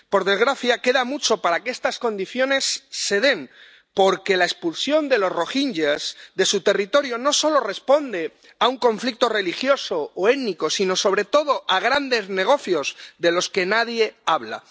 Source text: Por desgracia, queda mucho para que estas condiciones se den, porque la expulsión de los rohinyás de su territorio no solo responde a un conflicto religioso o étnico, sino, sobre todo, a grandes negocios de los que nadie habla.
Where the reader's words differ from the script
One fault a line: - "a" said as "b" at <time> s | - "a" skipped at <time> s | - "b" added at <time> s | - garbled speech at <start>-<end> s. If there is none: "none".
none